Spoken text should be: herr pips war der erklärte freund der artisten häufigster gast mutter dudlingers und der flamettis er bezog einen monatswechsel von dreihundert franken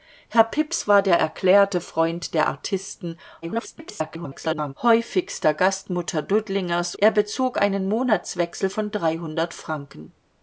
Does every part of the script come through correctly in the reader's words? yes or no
no